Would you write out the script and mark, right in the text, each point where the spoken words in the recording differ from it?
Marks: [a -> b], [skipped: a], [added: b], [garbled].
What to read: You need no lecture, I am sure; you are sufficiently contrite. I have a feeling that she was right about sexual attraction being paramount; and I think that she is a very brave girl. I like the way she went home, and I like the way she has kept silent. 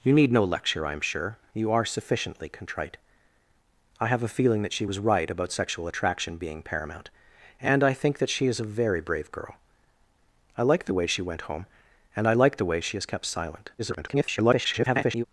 You need no lecture, I am sure; you are sufficiently contrite. I have a feeling that she was right about sexual attraction being paramount; and I think that she is a very brave girl. I like the way she went home, and I like the way she has kept silent. [garbled]